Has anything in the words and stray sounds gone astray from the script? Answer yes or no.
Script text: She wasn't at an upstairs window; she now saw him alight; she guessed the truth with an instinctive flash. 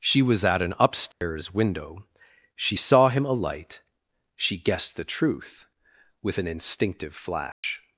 yes